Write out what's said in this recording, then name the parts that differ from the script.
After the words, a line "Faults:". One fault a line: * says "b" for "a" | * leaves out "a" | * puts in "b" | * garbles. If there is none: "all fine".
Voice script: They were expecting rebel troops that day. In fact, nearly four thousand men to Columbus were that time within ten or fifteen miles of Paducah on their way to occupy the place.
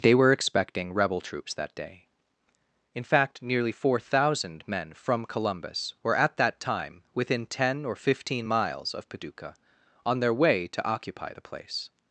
They were expecting rebel troops that day. In fact, nearly four thousand men from Columbus were at that time within ten or fifteen miles of Paducah on their way to occupy the place.
Faults:
* says "from" for "to"
* puts in "at"